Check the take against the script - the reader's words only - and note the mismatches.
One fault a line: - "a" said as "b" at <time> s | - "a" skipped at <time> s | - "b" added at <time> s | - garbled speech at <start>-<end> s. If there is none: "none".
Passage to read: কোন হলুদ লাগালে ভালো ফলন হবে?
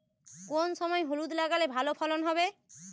- "সময়" added at 0.7 s